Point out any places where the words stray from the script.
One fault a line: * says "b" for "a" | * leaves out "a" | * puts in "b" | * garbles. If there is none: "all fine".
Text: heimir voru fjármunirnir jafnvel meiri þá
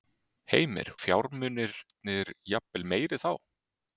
* leaves out "voru"